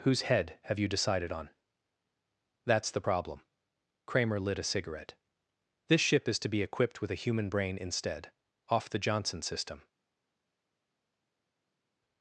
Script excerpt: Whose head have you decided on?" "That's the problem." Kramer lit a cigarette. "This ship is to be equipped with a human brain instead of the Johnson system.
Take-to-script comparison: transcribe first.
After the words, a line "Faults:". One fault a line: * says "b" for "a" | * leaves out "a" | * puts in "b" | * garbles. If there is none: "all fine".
Whose head have you decided on?" "That's the problem." Kramer lit a cigarette. "This ship is to be equipped with a human brain instead off the Johnson system.
Faults:
* says "off" for "of"